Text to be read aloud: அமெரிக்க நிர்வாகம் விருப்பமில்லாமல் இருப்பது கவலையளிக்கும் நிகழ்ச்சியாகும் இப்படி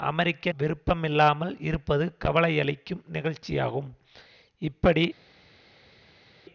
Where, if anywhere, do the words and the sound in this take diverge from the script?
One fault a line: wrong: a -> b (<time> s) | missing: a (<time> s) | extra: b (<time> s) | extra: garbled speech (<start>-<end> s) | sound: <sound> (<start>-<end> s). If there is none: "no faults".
missing: நிர்வாகம் (0.5 s)